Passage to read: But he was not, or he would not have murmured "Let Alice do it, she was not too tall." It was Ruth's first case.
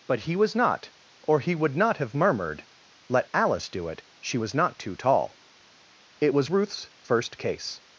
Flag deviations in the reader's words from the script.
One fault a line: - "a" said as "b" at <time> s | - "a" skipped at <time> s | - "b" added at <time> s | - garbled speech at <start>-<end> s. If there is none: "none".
none